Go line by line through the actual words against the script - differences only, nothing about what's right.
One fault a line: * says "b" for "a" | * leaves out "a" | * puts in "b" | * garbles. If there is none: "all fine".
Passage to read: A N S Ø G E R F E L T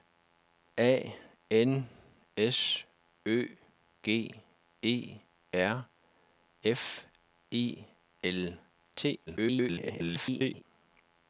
* garbles